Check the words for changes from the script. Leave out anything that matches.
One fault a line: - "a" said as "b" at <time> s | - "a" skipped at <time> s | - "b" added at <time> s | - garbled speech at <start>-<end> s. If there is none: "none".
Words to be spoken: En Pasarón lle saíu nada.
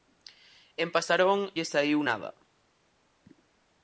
none